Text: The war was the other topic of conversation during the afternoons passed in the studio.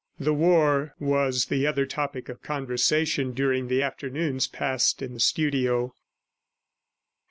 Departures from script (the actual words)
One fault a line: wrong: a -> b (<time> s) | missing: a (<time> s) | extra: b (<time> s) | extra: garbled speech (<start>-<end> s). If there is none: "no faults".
no faults